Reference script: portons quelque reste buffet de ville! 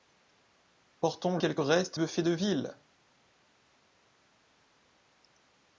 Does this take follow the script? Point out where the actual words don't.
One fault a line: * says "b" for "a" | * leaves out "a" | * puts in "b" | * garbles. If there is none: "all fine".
all fine